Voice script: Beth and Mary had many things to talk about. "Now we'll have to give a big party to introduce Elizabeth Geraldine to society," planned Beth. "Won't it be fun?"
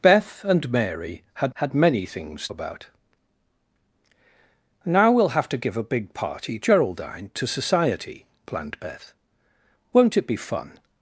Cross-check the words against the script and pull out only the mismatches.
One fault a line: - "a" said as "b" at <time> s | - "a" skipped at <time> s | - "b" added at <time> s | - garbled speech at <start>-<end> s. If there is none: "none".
- "had" added at 1.5 s
- "to talk" skipped at 2.5 s
- "to introduce Elizabeth" skipped at 6.6 s